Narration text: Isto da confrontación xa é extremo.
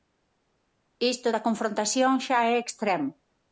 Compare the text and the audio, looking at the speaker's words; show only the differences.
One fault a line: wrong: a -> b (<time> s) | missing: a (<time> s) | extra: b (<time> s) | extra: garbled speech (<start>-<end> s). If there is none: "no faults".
no faults